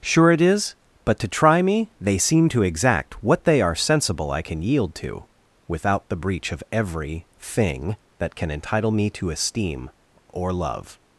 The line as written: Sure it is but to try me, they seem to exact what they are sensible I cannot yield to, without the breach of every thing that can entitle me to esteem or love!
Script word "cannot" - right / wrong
wrong